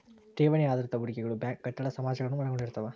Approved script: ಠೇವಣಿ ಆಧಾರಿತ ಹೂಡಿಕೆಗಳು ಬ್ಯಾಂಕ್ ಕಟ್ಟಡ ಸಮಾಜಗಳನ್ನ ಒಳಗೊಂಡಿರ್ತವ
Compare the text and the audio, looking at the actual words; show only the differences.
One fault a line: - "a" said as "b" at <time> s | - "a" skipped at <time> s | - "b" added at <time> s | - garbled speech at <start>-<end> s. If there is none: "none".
none